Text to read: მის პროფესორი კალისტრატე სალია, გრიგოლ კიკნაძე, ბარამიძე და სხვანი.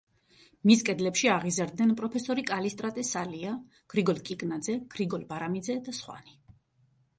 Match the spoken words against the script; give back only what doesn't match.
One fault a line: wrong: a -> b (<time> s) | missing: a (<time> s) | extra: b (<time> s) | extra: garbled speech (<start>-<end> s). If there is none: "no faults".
extra: კედლებში აღიზარდნენ (0.8 s)
extra: გრიგოლ (5.0 s)